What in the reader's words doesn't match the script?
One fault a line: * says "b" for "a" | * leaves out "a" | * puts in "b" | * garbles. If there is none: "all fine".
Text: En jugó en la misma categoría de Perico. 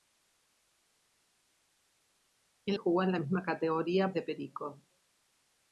all fine